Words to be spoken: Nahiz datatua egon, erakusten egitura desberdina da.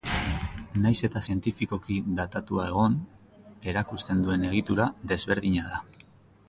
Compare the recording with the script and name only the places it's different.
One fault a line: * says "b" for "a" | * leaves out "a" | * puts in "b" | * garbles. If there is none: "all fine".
* puts in "eta zientifikoki"
* puts in "duen"